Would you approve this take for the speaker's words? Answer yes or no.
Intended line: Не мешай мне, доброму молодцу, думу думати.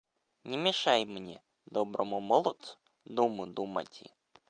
yes